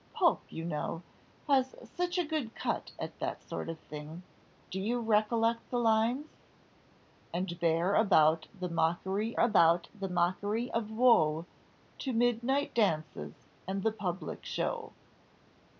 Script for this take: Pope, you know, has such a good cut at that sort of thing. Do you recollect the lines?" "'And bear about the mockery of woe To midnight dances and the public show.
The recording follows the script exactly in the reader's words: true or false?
false